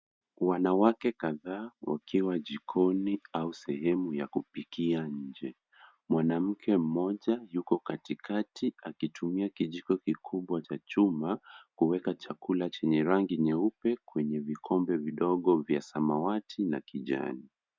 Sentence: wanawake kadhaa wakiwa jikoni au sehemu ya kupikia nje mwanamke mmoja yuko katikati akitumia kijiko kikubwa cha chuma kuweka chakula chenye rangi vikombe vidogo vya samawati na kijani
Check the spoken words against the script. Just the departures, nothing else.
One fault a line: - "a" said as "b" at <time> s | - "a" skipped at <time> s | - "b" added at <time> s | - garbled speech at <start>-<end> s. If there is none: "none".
- "nyeupe kwenye" added at 13.4 s